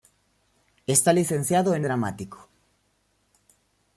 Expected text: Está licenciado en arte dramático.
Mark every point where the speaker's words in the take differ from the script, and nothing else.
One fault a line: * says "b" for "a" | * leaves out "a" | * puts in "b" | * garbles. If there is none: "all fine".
* leaves out "arte"